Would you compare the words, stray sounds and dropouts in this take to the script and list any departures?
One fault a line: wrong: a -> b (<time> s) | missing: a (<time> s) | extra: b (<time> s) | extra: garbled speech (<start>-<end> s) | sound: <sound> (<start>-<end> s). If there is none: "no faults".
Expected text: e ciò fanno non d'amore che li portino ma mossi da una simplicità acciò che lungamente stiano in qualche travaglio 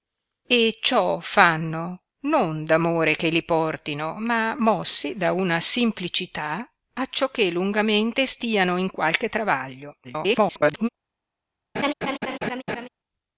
extra: garbled speech (10.0-10.9 s)
sound: laugh (11.7-12.9 s)